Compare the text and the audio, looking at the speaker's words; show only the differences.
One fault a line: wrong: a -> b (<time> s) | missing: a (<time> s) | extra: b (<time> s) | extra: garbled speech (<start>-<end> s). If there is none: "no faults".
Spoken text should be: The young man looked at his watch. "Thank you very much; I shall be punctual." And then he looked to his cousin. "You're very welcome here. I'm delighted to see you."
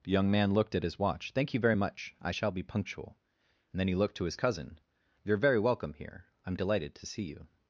no faults